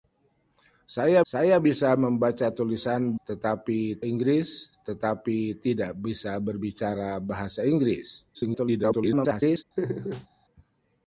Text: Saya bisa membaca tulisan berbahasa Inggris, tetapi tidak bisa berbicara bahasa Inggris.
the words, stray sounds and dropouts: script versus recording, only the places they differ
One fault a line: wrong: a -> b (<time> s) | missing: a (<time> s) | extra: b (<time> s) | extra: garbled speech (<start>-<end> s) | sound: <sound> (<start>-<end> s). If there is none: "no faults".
extra: saya (1.3 s)
wrong: berbahasa -> tetapi (3.2 s)
extra: garbled speech (8.3-9.6 s)
sound: laugh (9.8-10.3 s)